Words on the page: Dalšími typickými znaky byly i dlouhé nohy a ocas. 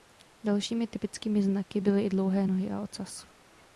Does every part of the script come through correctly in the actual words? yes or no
yes